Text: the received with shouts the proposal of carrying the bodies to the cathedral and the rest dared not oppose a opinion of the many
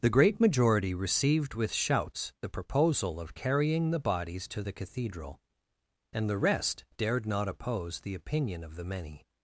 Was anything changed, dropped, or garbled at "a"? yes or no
yes